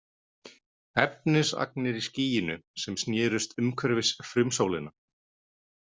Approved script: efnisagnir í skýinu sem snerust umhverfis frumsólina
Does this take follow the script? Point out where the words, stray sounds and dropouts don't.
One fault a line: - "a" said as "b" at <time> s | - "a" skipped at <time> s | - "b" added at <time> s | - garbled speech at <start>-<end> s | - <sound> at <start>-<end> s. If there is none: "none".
none